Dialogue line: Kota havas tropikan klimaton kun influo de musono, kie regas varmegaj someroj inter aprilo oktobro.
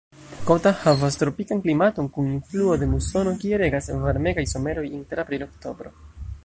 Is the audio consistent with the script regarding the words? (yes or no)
yes